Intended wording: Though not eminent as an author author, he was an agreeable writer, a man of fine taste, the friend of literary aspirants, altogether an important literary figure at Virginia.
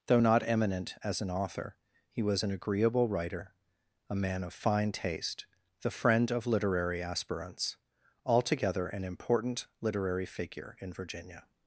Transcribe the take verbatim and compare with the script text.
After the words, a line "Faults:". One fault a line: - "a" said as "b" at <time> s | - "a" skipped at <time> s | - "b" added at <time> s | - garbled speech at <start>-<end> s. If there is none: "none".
Though not eminent as an author, he was an agreeable writer, a man of fine taste, the friend of literary aspirants, altogether an important literary figure in Virginia.
Faults:
- "author" skipped at 1.8 s
- "at" said as "in" at 10.8 s